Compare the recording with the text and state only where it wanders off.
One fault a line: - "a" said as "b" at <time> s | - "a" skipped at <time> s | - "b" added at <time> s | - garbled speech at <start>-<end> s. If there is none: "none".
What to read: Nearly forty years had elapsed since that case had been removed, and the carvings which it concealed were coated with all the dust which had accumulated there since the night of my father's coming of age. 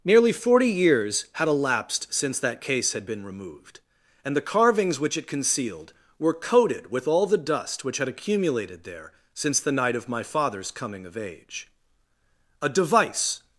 - "A device" added at 12.6 s